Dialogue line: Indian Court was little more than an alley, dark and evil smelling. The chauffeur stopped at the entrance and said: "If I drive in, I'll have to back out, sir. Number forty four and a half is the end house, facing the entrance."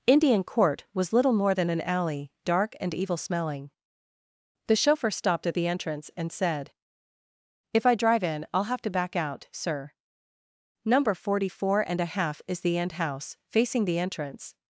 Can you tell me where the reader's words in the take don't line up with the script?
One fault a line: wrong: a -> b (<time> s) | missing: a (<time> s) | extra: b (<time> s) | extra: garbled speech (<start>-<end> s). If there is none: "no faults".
no faults